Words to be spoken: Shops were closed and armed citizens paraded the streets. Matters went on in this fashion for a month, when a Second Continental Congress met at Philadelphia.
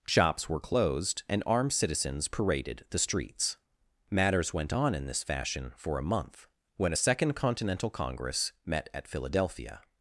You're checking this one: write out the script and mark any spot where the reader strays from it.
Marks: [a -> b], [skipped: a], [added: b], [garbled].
Shops were closed and armed citizens paraded the streets. Matters went on in this fashion for a month, when a Second Continental Congress met at Philadelphia.